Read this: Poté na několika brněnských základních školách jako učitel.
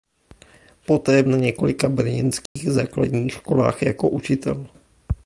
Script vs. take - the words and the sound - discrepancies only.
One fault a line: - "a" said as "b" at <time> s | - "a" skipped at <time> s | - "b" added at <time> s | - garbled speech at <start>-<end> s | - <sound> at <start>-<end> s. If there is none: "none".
- dropout at 2.5-2.6 s